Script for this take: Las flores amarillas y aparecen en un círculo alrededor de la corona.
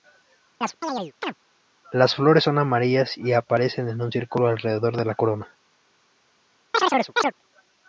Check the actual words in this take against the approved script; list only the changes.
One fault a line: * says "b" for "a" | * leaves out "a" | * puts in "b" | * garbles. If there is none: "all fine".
* puts in "son"